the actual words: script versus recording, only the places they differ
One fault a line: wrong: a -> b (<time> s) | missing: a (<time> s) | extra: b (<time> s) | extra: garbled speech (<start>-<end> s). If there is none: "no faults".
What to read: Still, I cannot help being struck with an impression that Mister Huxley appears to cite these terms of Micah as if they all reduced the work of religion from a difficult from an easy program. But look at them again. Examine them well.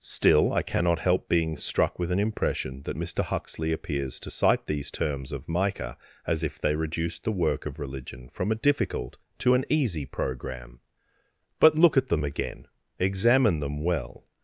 missing: all (6.7 s)
wrong: from -> to (9.4 s)